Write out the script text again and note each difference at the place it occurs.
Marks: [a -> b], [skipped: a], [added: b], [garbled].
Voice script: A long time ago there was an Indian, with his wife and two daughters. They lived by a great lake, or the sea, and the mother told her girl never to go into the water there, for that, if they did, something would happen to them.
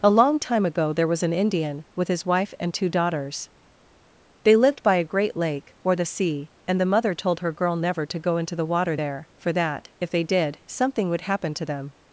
A long time ago there was an Indian, with his wife and two daughters. They lived by a great lake, or the sea, and the mother told her girl never to go into the water there, for that, if they did, something would happen to them.